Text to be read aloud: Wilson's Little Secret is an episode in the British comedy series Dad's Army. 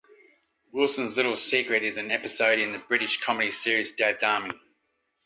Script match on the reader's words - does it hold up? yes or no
yes